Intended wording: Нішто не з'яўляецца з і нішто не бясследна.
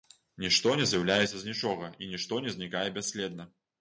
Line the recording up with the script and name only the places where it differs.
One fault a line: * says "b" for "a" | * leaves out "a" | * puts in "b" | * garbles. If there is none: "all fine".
* puts in "нічога"
* puts in "знікае"